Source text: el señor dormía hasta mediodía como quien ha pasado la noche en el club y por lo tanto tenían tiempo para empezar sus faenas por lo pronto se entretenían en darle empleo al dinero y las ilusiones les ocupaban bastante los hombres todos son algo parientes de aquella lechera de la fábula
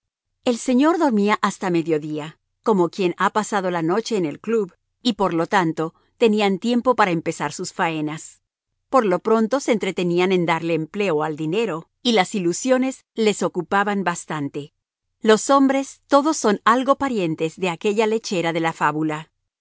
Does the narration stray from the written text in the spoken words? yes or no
no